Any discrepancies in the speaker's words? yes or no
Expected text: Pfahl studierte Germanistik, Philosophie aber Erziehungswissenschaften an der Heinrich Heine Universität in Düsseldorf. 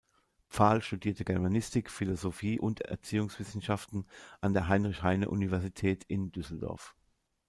yes